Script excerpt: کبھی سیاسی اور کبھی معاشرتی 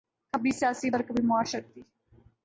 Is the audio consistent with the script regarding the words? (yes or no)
yes